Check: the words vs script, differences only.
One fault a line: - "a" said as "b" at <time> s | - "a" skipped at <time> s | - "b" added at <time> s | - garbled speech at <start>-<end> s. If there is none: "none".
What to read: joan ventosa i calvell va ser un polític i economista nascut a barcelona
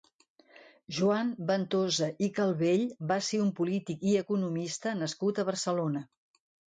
none